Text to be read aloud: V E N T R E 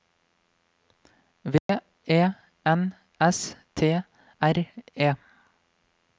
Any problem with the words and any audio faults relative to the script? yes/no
yes